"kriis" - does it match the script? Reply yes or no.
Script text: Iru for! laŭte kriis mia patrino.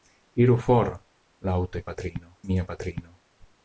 no